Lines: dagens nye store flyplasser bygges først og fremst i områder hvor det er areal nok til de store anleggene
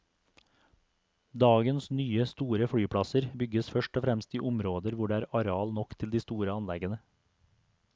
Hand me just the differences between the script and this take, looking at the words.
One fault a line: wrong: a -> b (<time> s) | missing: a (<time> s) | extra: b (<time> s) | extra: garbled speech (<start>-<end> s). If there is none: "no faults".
no faults